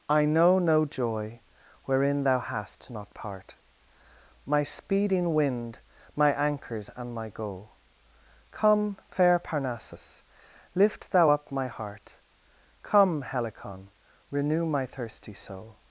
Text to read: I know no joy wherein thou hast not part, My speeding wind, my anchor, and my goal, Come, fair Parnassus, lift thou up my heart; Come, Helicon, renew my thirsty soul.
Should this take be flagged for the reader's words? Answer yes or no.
yes